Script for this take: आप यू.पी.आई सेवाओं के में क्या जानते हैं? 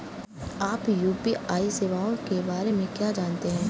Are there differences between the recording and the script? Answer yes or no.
yes